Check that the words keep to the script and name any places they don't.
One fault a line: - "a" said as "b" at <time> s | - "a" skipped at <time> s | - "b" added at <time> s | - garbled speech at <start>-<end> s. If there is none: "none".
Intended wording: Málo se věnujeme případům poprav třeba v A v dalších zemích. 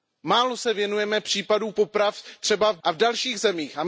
none